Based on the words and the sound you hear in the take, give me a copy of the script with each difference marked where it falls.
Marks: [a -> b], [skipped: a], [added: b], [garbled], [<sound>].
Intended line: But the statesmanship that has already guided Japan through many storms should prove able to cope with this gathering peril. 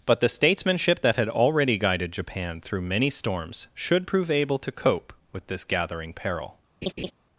But the statesmanship that [has -> had] already guided Japan through many storms should prove able to cope with this gathering peril. [laugh]